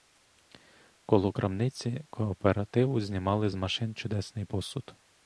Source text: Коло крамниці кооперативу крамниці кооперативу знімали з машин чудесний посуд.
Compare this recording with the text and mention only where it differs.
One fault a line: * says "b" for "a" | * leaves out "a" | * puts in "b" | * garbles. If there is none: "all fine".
* leaves out "крамниці кооперативу"